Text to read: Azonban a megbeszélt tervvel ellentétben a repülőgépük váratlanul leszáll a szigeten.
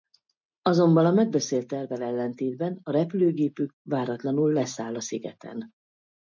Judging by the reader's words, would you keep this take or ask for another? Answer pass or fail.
pass